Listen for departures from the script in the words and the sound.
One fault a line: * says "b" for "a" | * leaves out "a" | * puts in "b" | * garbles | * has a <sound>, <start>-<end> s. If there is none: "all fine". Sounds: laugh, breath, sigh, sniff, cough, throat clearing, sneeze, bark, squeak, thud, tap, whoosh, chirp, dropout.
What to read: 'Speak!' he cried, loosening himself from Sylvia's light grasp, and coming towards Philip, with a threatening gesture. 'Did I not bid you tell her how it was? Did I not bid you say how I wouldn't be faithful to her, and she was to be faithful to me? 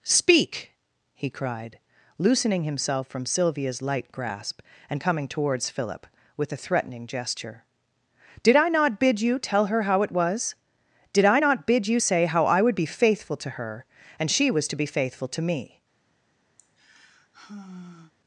* says "would" for "wouldn't"
* has a sigh, 16.6-18.1 s